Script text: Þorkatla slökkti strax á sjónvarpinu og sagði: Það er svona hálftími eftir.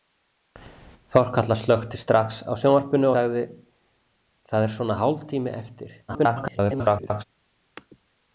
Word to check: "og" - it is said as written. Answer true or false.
false